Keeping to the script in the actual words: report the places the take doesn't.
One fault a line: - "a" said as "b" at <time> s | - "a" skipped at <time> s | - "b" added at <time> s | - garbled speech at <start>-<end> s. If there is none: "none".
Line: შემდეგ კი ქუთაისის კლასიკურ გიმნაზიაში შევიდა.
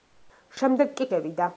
- "ქუთაისის კლასიკურ გიმნაზიაში" skipped at 1.1 s